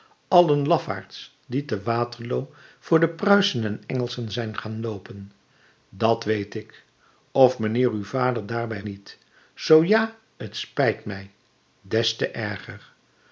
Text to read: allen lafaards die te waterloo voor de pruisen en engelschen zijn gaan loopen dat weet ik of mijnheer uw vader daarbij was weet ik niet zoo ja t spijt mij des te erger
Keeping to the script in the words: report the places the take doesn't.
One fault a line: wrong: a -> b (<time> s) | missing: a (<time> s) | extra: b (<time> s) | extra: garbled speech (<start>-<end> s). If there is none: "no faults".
missing: was weet ik (8.8 s)